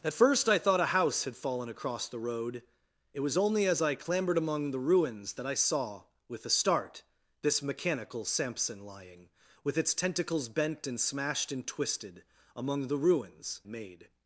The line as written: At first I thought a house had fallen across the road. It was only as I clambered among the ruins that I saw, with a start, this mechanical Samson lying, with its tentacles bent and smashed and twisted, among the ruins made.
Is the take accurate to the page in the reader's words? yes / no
yes